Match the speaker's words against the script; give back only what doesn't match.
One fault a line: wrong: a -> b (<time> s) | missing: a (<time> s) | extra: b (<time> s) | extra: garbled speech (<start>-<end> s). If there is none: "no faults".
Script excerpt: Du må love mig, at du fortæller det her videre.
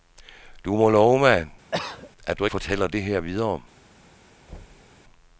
no faults